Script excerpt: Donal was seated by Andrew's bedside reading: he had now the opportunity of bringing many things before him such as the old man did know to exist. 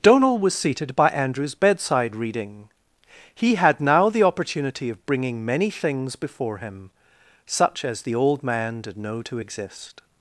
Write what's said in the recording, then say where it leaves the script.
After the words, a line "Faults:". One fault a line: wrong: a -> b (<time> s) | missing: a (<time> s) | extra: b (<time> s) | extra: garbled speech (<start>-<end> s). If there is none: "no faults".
Donal was seated by Andrew's bedside reading: he had now the opportunity of bringing many things before him such as the old man did know to exist.
Faults:
no faults